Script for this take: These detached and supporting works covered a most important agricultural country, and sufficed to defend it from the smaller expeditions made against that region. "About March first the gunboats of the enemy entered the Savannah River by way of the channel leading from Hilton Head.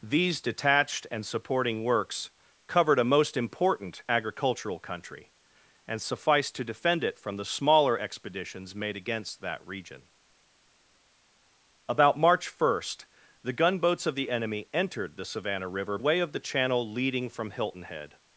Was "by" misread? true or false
true